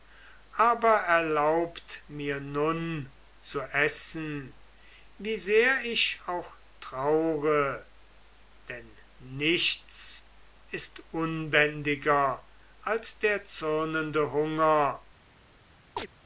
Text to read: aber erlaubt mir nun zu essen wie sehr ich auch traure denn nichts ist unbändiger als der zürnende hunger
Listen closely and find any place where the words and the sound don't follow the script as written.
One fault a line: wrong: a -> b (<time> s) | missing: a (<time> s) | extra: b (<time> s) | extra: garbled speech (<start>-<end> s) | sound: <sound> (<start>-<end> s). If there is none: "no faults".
sound: chirp (16.0-16.1 s)